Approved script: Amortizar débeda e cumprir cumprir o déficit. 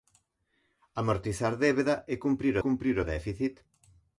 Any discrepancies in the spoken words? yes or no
no